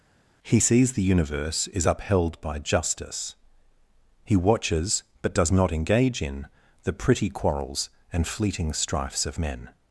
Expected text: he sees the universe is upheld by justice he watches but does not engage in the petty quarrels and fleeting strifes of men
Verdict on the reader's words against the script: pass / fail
fail